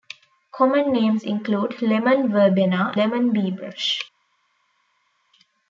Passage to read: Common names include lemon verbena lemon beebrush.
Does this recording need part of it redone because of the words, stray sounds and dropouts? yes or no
no